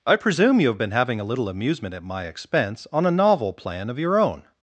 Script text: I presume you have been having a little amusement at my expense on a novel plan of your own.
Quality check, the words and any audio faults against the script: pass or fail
pass